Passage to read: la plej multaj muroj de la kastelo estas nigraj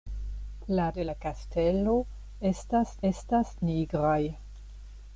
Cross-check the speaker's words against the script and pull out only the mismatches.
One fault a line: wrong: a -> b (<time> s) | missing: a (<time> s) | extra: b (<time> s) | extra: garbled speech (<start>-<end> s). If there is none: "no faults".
missing: plej multaj muroj (0.8 s)
extra: estas (3.1 s)